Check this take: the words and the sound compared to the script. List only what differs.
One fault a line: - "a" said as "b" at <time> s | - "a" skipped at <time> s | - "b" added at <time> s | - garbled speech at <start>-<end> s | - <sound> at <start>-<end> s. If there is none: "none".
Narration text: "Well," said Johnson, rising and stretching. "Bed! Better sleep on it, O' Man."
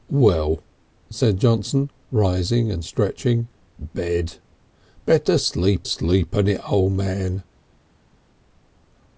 - "sleep" added at 5.8 s